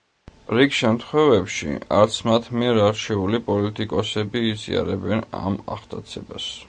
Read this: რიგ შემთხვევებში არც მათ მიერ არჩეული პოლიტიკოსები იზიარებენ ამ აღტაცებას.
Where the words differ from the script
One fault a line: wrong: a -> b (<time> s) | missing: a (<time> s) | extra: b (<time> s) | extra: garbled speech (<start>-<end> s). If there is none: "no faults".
no faults